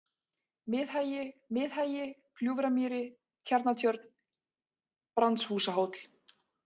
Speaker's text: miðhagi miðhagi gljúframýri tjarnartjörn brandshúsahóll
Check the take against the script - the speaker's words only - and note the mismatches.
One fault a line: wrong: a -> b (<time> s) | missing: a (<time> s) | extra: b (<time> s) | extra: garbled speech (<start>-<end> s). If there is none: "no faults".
no faults